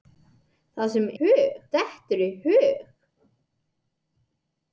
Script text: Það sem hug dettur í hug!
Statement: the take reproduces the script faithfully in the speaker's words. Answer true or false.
true